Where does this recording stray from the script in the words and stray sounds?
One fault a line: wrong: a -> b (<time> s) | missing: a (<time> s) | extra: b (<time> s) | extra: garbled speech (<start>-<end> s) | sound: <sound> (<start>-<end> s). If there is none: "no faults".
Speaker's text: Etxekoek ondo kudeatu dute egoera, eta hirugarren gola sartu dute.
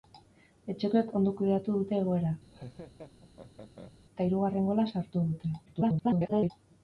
sound: laugh (2.5-3.9 s)
extra: garbled speech (5.7-6.5 s)